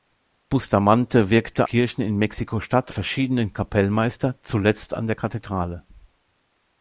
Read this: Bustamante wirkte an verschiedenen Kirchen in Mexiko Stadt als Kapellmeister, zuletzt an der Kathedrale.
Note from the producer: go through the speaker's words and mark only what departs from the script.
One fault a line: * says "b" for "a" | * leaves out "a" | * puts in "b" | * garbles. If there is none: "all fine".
* leaves out "an verschiedenen"
* says "verschiedenen" for "als"